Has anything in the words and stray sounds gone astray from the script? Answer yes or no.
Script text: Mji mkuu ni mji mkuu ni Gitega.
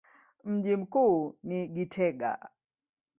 yes